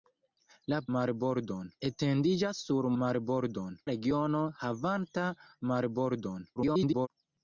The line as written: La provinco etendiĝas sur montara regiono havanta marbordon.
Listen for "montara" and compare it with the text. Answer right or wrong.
wrong